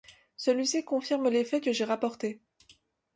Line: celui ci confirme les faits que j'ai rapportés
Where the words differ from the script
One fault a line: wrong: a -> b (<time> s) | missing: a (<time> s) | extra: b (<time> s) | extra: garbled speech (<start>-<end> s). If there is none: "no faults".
no faults